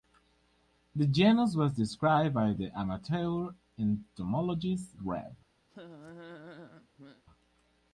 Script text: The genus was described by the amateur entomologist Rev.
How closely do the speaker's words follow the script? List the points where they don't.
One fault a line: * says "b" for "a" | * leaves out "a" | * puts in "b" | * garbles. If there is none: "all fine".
all fine